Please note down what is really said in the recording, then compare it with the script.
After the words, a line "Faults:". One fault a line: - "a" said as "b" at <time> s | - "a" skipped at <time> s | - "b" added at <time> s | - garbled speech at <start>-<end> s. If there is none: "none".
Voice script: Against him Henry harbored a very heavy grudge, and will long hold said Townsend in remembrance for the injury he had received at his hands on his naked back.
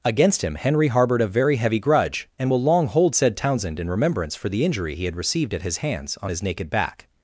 Against him Henry harbored a very heavy grudge, and will long hold said Townsend in remembrance for the injury he had received at his hands on his naked back.
Faults:
none